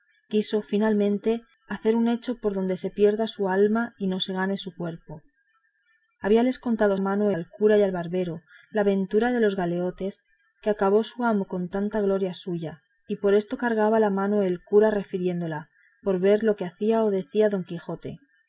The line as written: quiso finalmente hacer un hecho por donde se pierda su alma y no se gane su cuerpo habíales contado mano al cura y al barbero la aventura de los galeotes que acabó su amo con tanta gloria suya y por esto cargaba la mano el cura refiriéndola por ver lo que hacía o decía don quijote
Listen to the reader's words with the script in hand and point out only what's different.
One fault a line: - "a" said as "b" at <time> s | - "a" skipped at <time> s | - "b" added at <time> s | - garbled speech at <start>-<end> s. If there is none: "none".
none